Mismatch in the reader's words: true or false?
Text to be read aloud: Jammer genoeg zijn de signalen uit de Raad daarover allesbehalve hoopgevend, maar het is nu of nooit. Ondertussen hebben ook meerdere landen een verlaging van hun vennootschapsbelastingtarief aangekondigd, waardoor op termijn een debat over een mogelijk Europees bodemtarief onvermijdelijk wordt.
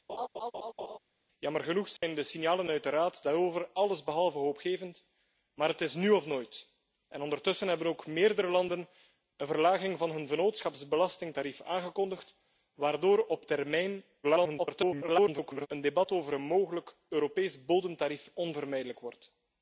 true